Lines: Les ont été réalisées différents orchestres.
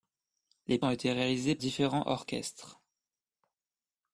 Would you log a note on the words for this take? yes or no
no